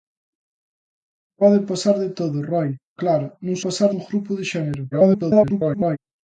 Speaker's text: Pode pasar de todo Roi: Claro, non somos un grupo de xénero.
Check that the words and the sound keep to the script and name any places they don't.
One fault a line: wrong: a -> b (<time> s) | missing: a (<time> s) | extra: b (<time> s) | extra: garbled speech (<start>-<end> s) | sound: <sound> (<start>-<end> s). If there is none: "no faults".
wrong: somos -> pasar (3.6 s)
extra: garbled speech (4.9-6.0 s)